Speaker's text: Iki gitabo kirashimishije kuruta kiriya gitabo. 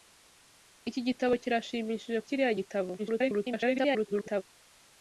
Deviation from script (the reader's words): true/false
true